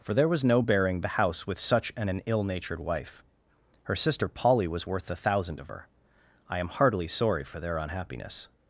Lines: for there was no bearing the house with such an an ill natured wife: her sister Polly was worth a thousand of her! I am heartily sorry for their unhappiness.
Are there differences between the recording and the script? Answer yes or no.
no